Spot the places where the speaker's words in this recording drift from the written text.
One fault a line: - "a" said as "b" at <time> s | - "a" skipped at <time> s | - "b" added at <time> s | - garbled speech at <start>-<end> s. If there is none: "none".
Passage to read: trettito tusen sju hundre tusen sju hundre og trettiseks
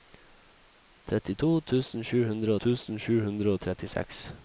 none